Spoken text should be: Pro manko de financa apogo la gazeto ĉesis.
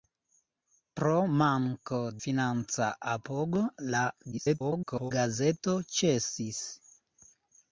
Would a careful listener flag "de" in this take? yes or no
yes